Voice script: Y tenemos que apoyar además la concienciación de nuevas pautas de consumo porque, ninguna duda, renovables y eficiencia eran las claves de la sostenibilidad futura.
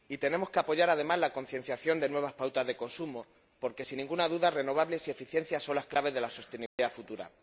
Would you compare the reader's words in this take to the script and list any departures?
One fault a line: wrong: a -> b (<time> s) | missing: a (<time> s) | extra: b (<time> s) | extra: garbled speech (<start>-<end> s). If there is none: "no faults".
extra: sin (3.8 s)
wrong: eran -> son (5.6 s)